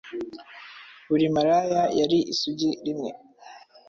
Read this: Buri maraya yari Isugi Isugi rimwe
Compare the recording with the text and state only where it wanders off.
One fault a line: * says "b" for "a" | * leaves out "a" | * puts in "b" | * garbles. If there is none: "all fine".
* leaves out "Isugi"